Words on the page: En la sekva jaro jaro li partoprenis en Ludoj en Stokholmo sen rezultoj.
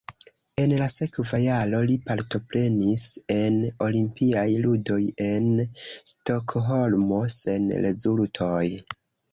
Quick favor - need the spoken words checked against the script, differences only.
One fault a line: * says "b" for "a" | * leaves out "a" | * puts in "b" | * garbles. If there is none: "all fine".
* leaves out "jaro"
* puts in "Olimpiaj"